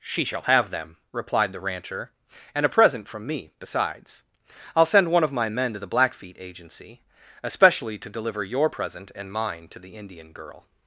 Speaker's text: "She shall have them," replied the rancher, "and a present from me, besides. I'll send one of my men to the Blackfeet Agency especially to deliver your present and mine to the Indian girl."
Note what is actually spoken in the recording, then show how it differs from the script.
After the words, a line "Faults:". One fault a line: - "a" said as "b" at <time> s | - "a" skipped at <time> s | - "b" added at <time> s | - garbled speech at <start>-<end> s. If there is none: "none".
"She shall have them," replied the rancher, "and a present from me, besides. I'll send one of my men to the Blackfeet Agency especially to deliver your present and mine to the Indian girl."
Faults:
none